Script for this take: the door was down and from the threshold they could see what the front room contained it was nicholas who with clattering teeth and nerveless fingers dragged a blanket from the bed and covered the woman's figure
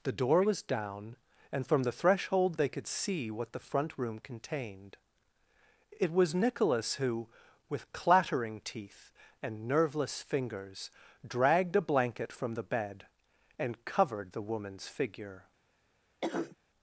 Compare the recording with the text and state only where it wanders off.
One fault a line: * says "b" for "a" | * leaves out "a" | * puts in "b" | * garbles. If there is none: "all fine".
all fine